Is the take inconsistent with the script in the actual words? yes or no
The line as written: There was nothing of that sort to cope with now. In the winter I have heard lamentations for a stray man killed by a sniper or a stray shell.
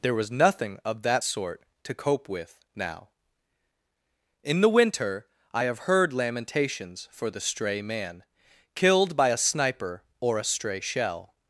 yes